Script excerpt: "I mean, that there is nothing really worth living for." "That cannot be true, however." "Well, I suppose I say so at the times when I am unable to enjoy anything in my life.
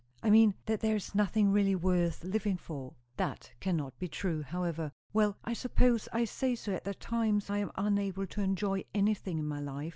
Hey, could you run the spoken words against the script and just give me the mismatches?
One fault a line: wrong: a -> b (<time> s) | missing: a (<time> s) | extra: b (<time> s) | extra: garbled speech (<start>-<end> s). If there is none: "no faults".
missing: when (7.5 s)